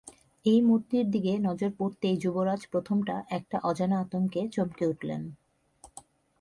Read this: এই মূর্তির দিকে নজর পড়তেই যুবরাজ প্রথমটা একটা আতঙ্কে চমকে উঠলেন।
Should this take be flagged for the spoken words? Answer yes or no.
yes